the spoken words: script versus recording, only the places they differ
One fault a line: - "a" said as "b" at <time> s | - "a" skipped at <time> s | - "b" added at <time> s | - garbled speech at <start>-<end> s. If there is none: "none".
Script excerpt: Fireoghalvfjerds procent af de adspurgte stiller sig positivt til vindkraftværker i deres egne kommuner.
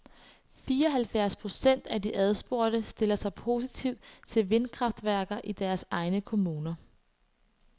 none